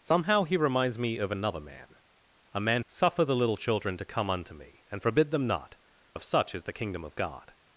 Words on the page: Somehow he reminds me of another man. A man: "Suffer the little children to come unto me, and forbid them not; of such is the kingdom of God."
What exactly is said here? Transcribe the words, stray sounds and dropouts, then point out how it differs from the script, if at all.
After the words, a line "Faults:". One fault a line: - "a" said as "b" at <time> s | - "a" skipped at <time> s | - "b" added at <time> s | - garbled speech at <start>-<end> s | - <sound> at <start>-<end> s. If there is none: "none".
Somehow he reminds me of another man. A man: "Suffer the little children to come unto me, and forbid them not; of such is the kingdom of God."
Faults:
none